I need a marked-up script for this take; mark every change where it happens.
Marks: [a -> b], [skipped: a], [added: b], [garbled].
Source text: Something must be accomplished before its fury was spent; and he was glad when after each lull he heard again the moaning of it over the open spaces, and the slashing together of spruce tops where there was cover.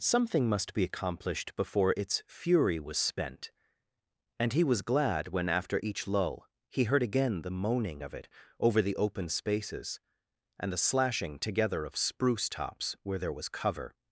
Something must be accomplished before its fury was spent; and he was glad when after each lull he heard again the moaning of it over the open spaces, and the slashing together of spruce tops where there was cover.